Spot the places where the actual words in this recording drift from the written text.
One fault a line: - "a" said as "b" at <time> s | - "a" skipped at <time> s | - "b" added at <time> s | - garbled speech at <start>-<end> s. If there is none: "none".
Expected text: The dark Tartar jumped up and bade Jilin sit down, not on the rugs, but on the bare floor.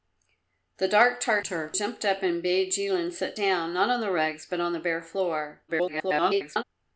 - garbled speech at 5.7-6.6 s